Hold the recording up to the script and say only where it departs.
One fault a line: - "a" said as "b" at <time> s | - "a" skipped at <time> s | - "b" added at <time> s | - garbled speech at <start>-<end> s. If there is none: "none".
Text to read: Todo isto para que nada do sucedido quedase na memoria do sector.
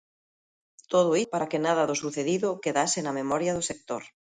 - "isto" skipped at 1.1 s